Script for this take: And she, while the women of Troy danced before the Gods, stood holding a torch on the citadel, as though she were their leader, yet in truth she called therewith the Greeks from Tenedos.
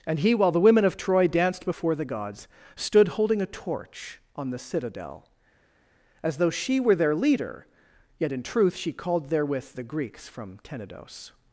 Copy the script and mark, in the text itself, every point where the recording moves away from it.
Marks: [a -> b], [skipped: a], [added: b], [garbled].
And [she, -> he] while the women of Troy danced before the Gods, stood holding a torch on the citadel, as though she were their leader, yet in truth she called therewith the Greeks from Tenedos.